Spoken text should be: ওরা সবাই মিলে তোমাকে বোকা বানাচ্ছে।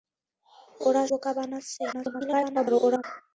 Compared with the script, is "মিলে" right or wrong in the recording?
wrong